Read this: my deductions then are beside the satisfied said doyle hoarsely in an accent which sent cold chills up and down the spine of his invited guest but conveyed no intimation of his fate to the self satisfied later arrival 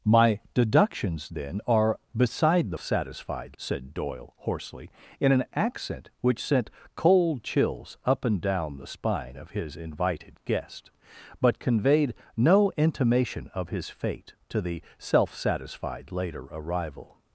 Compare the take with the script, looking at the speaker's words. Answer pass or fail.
pass